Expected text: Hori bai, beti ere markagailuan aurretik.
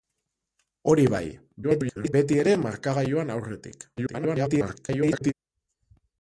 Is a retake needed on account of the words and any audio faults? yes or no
yes